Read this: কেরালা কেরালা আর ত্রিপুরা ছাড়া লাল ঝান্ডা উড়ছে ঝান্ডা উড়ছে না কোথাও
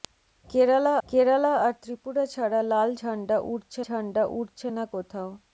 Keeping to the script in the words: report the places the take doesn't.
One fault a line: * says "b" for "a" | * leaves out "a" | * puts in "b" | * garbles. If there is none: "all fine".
all fine